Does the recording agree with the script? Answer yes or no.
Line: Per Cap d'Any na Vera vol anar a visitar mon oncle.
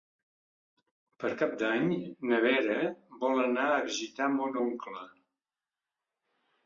yes